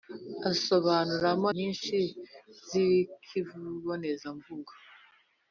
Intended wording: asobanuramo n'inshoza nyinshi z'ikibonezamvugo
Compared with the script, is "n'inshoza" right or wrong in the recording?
wrong